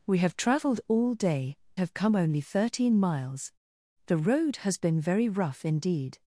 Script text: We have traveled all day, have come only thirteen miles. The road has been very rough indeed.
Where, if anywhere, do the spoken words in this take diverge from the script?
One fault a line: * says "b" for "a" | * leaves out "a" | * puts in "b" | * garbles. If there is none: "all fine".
all fine